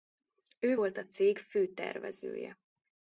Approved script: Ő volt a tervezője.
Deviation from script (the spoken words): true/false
true